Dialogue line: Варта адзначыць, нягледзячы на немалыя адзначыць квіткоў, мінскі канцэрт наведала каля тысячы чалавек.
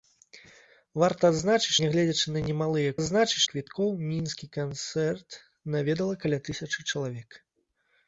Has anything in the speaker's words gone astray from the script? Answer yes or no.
no